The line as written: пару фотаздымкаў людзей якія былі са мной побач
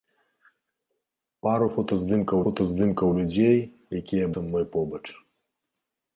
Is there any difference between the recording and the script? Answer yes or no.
yes